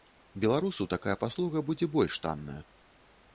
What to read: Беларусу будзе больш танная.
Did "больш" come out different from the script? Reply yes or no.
no